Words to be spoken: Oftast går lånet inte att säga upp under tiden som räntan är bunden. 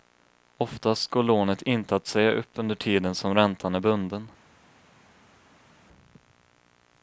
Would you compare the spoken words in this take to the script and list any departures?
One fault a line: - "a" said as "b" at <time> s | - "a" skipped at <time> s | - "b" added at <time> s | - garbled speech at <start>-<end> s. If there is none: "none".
none